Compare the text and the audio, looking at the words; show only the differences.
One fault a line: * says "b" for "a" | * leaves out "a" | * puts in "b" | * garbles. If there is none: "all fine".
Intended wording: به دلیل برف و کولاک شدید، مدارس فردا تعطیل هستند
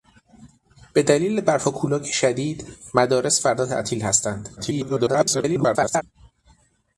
* garbles